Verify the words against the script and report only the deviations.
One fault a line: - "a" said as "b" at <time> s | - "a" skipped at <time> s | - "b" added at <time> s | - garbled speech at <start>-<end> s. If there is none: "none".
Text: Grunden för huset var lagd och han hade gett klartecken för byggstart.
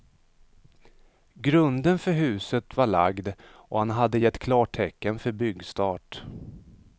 none